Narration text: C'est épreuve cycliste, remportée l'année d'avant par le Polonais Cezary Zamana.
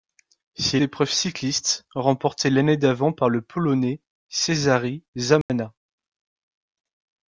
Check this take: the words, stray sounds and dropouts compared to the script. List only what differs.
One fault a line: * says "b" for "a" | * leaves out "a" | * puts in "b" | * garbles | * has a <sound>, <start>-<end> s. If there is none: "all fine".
* has a dropout, 5.4-5.5 s